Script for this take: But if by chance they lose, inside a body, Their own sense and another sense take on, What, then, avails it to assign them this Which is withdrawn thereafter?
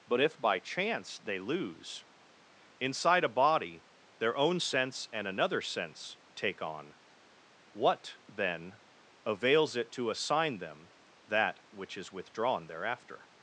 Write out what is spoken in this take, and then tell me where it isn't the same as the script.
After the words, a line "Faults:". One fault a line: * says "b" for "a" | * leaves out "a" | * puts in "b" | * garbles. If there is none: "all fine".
But if by chance they lose, inside a body, Their own sense and another sense take on, What, then, avails it to assign them that Which is withdrawn thereafter?
Faults:
* says "that" for "this"